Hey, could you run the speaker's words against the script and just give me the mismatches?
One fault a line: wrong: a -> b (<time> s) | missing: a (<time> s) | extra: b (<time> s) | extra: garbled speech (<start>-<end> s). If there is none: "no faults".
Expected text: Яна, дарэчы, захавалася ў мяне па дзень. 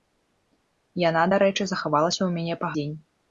no faults